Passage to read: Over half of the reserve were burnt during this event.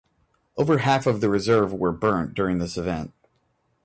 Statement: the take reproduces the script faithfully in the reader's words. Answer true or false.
true